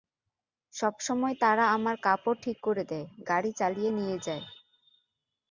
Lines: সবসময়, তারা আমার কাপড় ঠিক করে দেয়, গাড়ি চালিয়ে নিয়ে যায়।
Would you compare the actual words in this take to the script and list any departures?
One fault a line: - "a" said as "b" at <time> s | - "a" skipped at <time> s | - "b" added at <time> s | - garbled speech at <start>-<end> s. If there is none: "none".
none